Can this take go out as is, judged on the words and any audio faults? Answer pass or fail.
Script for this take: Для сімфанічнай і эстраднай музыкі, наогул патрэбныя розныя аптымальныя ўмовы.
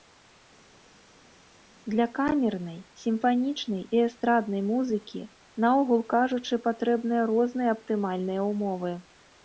fail